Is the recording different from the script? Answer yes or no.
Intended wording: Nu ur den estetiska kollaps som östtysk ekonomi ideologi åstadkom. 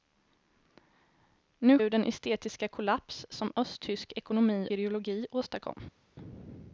no